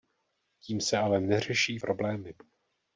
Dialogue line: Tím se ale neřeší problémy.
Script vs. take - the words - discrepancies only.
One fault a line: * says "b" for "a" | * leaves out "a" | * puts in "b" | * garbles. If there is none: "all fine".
all fine